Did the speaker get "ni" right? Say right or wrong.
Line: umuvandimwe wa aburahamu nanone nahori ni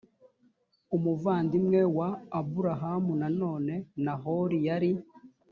wrong